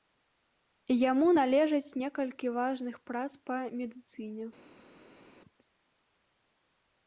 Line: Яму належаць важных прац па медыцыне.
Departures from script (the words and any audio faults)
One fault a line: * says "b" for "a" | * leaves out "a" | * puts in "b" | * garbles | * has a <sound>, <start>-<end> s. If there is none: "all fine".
* puts in "некалькі"